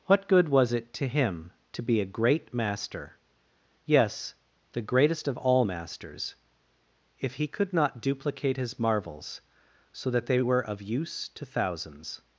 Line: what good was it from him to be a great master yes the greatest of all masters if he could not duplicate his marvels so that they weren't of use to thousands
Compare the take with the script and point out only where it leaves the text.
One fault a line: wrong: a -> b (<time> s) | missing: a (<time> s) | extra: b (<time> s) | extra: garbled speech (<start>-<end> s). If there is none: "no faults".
wrong: from -> to (0.9 s)
wrong: weren't -> were (10.4 s)